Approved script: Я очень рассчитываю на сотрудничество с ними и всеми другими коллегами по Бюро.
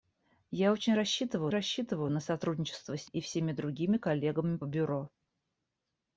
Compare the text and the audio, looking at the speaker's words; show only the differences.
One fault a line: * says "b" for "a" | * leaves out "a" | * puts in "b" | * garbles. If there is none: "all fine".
* puts in "рассчитываю"
* leaves out "ними"
* leaves out "по"